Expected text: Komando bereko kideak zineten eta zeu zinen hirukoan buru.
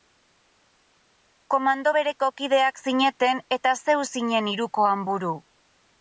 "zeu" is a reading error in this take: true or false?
false